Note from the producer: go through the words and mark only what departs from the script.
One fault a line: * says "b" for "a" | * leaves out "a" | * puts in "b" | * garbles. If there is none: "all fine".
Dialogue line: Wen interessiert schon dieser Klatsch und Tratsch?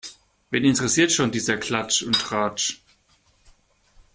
all fine